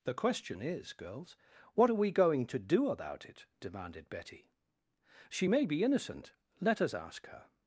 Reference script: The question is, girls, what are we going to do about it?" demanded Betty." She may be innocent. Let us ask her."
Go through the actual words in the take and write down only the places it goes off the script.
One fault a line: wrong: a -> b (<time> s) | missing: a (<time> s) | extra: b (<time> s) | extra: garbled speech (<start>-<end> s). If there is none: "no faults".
no faults